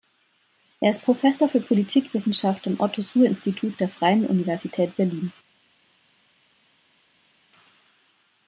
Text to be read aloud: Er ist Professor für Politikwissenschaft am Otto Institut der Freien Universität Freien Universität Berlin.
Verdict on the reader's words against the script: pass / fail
fail